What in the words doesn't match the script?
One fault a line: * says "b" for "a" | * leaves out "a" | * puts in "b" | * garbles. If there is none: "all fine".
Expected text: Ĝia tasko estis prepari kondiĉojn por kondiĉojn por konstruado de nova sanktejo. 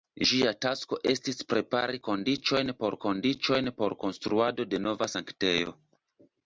all fine